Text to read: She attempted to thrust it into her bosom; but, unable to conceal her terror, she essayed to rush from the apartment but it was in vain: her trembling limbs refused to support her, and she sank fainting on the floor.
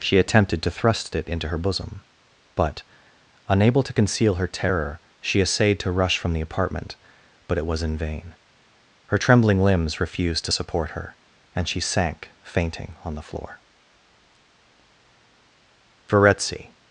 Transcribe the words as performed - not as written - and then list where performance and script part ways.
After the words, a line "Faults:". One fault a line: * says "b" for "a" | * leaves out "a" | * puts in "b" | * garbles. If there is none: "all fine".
She attempted to thrust it into her bosom; but, unable to conceal her terror, she essayed to rush from the apartment but it was in vain: her trembling limbs refused to support her, and she sank fainting on the floor. Verezzi
Faults:
* puts in "Verezzi"